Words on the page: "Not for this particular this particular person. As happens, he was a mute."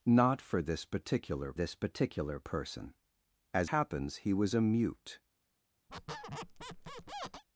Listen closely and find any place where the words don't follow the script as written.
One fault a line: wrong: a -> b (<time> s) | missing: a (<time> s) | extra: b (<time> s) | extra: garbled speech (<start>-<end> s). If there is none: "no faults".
no faults